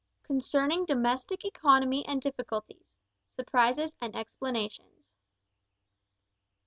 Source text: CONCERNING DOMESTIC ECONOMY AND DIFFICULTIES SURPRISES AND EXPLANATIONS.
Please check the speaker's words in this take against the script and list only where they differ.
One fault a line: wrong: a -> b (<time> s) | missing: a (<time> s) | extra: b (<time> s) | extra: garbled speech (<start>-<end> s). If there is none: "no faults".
no faults